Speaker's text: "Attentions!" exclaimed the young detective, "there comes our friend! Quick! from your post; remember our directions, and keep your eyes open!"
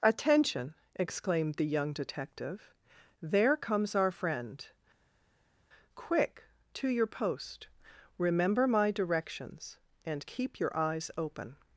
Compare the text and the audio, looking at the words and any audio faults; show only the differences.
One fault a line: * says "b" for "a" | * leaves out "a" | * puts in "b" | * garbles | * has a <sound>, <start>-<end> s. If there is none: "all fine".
* says "Attention" for "Attentions"
* says "to" for "from"
* says "my" for "our"